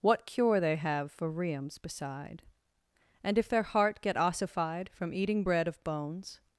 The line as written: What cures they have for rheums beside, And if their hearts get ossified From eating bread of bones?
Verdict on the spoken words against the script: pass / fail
fail